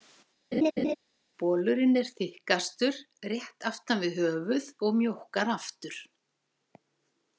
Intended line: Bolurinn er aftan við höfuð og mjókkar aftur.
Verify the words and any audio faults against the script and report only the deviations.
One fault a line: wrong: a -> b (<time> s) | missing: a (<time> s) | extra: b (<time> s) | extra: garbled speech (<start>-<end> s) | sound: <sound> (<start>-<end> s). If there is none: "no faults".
sound: laugh (0.5-1.0 s)
extra: þykkastur rétt (2.2 s)